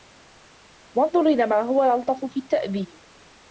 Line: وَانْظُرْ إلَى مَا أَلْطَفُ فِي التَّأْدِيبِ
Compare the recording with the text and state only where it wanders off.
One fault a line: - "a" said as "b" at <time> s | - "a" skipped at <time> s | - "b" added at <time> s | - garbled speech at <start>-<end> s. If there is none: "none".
- "هُوَ" added at 1.6 s